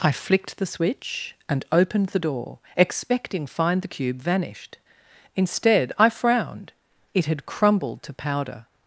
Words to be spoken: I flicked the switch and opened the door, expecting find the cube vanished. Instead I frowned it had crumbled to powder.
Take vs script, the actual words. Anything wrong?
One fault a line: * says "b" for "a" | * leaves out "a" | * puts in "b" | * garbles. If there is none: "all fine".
all fine